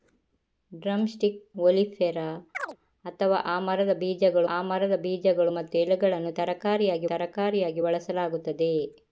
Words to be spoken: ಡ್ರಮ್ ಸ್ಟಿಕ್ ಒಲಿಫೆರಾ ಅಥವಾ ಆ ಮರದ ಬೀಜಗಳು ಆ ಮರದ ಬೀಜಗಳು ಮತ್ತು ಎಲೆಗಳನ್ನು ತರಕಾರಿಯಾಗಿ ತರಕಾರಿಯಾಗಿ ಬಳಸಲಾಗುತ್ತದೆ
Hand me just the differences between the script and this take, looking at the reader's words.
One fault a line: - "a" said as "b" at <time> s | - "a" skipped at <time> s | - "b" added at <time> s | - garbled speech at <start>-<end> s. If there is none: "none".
none